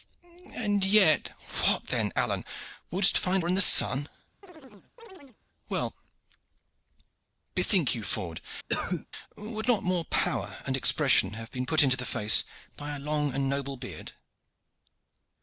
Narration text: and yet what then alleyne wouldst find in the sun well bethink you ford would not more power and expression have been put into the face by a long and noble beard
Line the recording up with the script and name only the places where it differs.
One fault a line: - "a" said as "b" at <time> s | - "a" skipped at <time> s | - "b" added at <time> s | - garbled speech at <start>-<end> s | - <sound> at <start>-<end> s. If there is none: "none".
- chirp at 4.4-5.4 s
- cough at 8.7-9.1 s